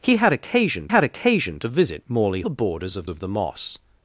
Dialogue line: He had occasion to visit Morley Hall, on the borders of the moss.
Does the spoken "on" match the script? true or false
false